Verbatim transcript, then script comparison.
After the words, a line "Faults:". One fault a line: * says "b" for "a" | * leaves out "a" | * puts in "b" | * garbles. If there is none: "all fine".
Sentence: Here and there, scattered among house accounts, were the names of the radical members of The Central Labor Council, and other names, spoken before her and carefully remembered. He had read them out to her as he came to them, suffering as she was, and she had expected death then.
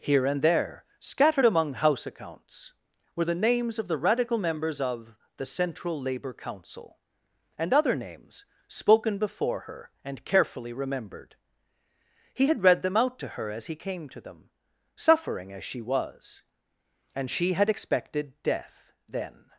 Here and there, scattered among house accounts, were the names of the radical members of The Central Labor Council, and other names, spoken before her and carefully remembered. He had read them out to her as he came to them, suffering as she was, and she had expected death then.
Faults:
all fine